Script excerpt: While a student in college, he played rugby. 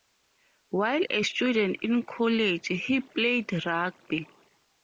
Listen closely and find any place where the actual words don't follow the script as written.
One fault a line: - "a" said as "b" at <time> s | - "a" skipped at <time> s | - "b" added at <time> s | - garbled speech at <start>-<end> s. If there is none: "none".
none